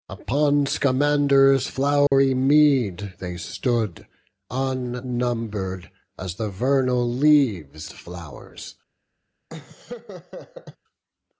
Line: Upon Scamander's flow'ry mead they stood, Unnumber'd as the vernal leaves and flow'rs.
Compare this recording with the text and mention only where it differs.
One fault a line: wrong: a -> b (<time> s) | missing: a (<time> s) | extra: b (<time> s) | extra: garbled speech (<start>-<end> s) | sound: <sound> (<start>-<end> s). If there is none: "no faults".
sound: dropout (2.1-2.1 s)
missing: and (7.9 s)
sound: laugh (9.5-10.8 s)